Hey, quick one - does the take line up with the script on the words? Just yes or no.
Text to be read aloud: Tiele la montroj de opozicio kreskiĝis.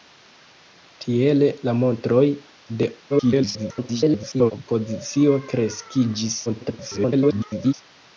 no